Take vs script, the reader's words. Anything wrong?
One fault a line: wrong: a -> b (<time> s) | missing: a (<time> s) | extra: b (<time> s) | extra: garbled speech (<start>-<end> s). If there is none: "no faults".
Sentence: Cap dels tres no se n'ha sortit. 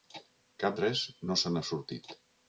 missing: dels (0.8 s)